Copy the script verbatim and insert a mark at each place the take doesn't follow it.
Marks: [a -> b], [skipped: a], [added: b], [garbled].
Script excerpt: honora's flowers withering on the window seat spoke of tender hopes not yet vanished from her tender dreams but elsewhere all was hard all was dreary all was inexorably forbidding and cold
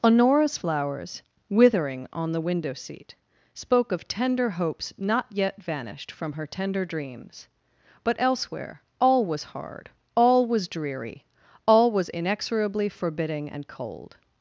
honora's flowers withering on the window seat spoke of tender hopes not yet vanished from her tender dreams but elsewhere all was hard all was dreary all was inexorably forbidding and cold